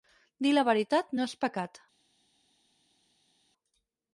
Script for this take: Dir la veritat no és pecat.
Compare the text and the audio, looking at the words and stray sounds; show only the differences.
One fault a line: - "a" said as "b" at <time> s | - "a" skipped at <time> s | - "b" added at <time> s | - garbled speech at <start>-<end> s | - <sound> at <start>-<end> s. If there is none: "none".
none